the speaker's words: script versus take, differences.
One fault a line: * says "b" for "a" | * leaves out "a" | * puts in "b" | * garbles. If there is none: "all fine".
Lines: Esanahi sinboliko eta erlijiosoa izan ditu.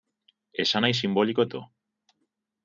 * leaves out "eta erlijiosoa izan"